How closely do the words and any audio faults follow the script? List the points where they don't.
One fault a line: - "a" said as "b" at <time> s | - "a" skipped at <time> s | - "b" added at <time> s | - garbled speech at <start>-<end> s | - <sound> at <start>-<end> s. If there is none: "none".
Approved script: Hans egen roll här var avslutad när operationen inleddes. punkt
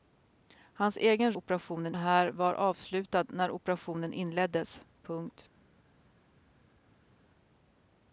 - "roll" said as "operationen" at 1.3 s